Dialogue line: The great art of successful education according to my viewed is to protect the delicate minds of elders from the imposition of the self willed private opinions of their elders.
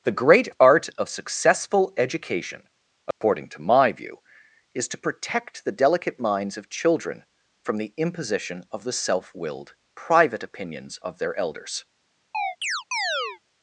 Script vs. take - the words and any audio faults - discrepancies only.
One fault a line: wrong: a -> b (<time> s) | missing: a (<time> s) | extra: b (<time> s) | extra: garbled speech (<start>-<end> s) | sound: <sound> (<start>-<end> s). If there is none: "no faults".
sound: dropout (3.1-3.2 s)
wrong: viewed -> view (3.9 s)
wrong: elders -> children (6.7 s)
sound: chirp (12.3-13.4 s)